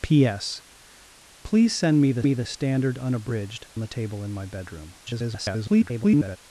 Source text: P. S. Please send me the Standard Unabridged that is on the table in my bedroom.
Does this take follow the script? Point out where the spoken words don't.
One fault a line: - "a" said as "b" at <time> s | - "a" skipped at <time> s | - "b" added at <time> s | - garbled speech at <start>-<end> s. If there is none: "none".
- "me the" added at 2.2 s
- "that is on" skipped at 3.7 s
- garbled speech at 5.0-6.4 s